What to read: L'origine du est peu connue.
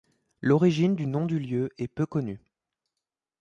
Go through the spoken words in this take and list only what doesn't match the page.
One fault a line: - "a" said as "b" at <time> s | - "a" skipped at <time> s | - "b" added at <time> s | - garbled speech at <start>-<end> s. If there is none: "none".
- "nom du lieu" added at 1.1 s